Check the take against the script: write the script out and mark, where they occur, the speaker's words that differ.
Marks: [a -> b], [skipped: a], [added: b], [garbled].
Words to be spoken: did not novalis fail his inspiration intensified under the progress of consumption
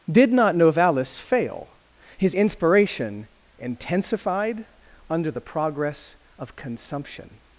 did not novalis fail his inspiration intensified under the progress of consumption